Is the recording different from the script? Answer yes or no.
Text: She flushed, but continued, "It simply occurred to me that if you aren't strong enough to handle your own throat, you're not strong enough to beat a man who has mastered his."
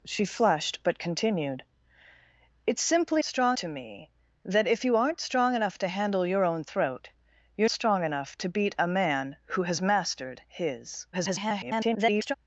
yes